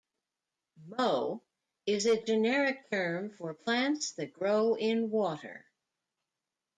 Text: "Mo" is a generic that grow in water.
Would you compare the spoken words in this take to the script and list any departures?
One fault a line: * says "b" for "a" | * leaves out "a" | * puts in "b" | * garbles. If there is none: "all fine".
* puts in "term for plants"